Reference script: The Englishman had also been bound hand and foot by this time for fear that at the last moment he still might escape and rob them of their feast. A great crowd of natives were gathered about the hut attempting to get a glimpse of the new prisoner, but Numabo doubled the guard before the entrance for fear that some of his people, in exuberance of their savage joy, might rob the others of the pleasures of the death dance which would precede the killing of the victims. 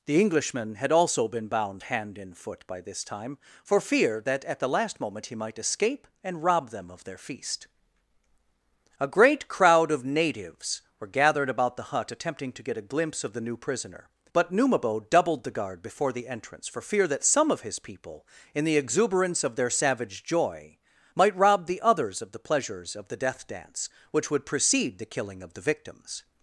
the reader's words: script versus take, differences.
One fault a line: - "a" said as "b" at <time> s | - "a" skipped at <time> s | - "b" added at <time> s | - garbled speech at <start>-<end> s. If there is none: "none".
- "still" skipped at 5.3 s
- "the" added at 18.6 s